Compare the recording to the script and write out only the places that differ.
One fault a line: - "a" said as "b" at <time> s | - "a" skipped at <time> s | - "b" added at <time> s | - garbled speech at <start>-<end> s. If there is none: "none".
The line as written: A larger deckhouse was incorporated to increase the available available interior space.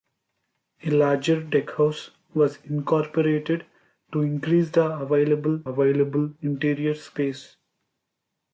none